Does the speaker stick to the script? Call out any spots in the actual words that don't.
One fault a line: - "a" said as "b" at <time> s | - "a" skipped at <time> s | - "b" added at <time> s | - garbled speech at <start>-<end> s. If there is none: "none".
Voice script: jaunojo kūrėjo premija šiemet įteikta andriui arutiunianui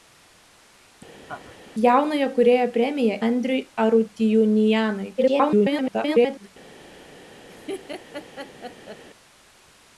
- "šiemet įteikta" skipped at 3.2 s
- garbled speech at 5.2-6.5 s